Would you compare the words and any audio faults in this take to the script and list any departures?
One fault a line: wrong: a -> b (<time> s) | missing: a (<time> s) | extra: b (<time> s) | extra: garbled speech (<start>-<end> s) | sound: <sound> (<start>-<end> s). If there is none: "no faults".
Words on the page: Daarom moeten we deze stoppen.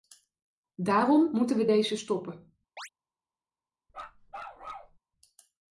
sound: chirp (2.8-2.9 s)
sound: bark (3.9-5.0 s)